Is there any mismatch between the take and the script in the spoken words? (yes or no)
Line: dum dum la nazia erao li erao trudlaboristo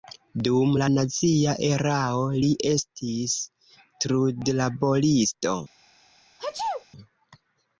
yes